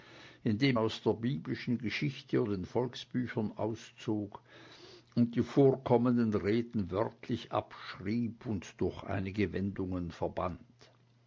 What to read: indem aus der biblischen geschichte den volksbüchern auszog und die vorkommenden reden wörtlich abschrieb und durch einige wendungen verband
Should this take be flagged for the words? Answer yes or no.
no